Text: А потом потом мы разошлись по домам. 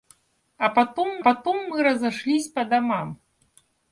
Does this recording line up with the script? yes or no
yes